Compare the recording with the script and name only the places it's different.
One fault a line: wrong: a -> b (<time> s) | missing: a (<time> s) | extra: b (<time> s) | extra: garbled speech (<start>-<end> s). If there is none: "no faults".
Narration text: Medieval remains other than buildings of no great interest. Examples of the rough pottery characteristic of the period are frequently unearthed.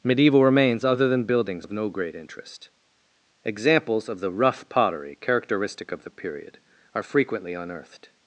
no faults